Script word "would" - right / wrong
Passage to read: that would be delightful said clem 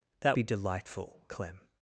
wrong